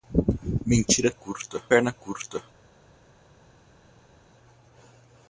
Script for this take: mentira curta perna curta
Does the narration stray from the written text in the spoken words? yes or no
no